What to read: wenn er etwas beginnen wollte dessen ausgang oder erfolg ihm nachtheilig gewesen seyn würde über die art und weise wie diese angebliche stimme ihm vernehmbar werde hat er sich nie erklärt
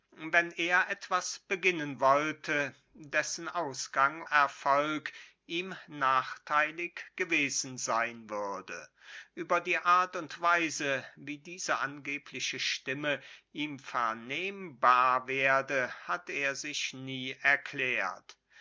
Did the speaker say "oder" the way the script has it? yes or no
no